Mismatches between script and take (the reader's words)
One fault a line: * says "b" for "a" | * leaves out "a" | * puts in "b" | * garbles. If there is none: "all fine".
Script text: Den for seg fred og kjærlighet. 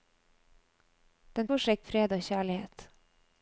all fine